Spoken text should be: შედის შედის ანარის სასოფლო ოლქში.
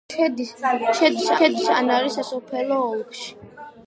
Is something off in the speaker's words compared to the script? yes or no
no